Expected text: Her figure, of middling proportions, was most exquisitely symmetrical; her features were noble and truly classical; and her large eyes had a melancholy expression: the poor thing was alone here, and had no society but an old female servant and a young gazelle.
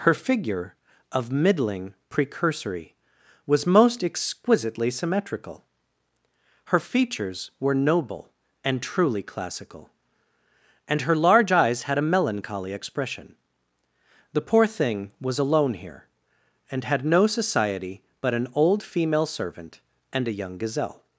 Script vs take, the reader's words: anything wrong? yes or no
yes